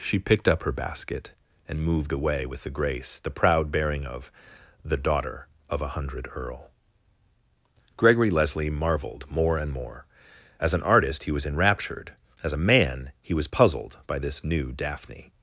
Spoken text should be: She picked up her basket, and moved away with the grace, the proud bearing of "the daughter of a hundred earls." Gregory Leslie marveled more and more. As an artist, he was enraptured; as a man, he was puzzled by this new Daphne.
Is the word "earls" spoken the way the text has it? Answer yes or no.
no